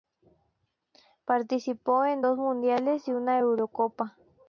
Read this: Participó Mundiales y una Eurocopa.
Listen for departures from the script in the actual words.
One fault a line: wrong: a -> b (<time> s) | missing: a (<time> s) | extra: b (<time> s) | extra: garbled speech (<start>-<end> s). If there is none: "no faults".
extra: en dos (2.0 s)